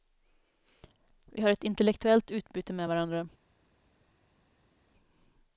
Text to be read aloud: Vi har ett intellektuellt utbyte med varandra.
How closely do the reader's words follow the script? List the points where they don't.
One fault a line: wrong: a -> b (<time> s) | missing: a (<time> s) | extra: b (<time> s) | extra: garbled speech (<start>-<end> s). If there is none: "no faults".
no faults